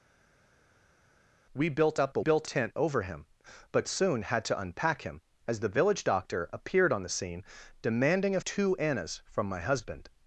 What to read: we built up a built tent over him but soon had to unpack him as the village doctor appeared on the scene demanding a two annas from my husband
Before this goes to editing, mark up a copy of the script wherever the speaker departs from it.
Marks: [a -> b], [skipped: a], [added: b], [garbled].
we built up a built tent over him but soon had to unpack him as the village doctor appeared on the scene demanding a two annas from my husband